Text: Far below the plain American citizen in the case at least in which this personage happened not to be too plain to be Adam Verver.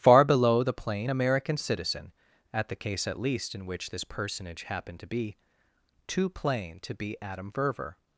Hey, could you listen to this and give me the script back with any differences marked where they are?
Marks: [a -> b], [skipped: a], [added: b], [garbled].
Far below the plain American citizen [in -> at] the case at least in which this personage happened [skipped: not] to be too plain to be Adam Verver.